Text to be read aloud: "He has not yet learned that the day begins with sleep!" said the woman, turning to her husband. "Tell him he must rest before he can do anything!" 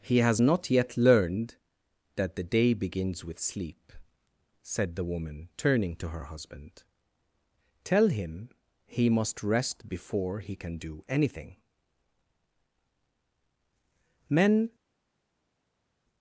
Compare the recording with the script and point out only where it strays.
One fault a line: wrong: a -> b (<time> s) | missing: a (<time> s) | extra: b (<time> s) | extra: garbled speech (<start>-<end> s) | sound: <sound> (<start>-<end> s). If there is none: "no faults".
extra: Men (14.3 s)